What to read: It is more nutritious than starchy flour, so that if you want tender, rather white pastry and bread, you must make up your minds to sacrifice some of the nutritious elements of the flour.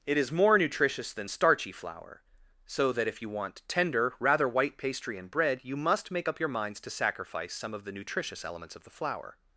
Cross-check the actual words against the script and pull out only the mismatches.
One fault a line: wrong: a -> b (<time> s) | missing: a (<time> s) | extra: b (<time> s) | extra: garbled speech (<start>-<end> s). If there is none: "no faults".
no faults